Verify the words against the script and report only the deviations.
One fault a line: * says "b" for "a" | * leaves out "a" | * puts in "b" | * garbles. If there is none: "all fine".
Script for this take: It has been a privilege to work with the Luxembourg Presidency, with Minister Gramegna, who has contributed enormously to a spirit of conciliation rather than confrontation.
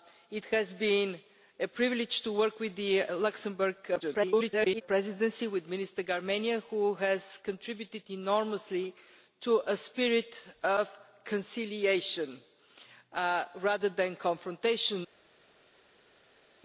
* garbles